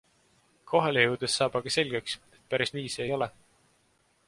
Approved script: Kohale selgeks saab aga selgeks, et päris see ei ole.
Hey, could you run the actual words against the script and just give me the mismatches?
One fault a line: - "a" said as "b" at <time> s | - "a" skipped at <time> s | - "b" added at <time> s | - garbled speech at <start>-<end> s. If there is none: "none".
- "selgeks" said as "jõudes" at 1.0 s
- "nii" added at 2.8 s